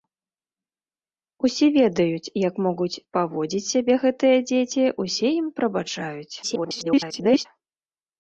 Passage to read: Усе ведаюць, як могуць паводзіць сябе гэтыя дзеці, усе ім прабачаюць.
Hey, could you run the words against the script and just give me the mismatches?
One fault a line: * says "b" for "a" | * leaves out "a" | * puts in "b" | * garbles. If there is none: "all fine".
* garbles